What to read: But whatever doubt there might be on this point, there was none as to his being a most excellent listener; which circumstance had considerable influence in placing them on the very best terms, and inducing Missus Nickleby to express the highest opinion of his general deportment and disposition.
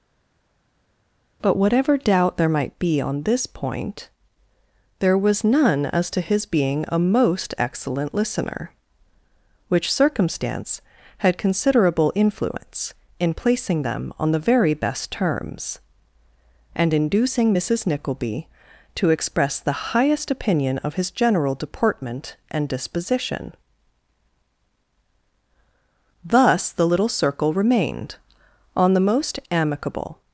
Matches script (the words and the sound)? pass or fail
fail